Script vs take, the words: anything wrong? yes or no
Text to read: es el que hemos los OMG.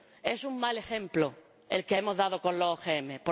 yes